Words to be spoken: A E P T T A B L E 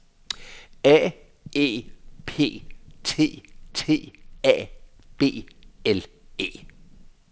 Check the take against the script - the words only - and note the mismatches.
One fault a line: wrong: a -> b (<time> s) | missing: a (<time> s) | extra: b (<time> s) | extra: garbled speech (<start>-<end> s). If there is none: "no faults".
no faults